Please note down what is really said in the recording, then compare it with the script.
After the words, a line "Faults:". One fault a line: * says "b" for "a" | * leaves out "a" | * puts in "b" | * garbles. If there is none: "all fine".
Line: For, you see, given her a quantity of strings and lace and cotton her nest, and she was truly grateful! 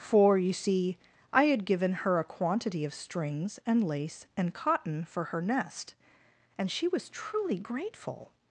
For, you see, I had given her a quantity of strings and lace and cotton for her nest, and she was truly grateful!
Faults:
* puts in "I had"
* puts in "for"